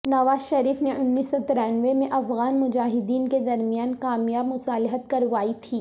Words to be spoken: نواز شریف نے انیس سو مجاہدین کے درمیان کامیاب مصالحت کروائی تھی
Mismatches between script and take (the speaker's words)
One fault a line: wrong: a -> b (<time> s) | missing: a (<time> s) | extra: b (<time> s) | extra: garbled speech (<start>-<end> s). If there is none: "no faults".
extra: ترانوے میں افغان (1.5 s)